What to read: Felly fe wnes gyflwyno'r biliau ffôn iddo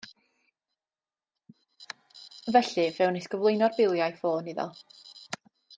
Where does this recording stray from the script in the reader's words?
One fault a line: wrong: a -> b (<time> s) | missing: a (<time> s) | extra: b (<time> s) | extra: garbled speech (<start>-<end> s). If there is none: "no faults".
no faults